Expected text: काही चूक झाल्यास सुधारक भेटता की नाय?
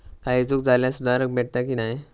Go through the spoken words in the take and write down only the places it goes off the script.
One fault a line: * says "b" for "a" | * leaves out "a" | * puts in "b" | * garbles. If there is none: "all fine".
all fine